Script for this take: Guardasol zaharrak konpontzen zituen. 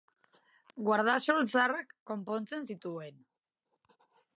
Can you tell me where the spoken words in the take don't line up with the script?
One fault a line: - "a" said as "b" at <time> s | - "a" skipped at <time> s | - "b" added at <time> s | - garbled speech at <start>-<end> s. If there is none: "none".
none